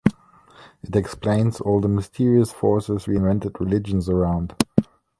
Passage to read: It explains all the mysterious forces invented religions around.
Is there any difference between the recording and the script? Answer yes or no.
yes